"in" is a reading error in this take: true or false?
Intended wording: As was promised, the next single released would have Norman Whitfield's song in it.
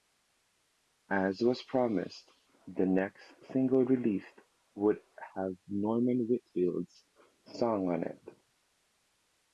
true